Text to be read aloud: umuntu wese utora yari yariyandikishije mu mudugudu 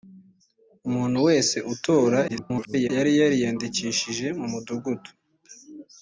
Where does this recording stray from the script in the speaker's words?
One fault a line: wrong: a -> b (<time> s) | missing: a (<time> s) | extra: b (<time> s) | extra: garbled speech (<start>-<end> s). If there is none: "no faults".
extra: garbled speech (2.3-2.9 s)